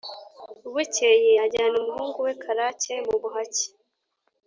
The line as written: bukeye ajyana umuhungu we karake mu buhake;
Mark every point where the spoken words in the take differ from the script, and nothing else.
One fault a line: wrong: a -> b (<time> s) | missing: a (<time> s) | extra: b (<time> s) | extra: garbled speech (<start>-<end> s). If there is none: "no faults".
no faults